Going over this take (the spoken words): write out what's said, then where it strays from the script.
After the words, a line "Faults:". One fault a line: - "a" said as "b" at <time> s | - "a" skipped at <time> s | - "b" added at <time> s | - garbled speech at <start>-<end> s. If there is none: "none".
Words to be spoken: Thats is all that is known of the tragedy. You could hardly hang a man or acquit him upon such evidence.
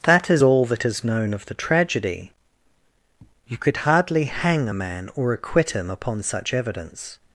That is all that is known of the tragedy. You could hardly hang a man or acquit him upon such evidence.
Faults:
- "Thats" said as "That" at 0.0 s